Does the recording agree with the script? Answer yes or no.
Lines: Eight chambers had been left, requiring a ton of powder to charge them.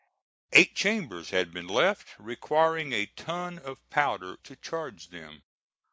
yes